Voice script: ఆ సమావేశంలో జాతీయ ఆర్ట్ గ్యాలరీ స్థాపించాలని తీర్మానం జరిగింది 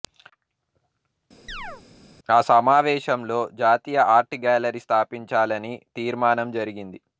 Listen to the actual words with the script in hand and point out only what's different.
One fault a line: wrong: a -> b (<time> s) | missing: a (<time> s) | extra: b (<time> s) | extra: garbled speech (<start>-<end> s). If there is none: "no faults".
no faults